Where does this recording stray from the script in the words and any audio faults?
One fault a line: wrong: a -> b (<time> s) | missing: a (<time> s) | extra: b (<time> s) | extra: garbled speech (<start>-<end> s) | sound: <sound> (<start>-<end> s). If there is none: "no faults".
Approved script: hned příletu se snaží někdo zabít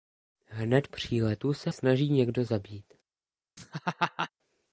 sound: laugh (3.6-4.3 s)